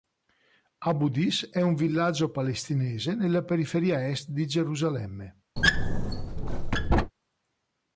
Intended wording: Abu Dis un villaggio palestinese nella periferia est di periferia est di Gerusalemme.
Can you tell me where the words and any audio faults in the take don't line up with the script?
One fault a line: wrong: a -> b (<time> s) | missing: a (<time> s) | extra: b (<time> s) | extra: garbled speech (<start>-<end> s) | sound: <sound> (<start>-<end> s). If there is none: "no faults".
extra: è (1.5 s)
missing: periferia est di (4.5 s)
sound: squeak (5.6-7.1 s)